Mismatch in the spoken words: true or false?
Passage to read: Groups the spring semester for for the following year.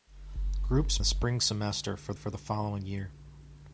false